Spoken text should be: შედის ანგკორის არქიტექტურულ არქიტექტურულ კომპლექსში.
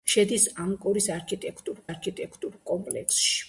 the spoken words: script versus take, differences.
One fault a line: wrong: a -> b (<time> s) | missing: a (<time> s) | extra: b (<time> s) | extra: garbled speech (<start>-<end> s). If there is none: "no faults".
no faults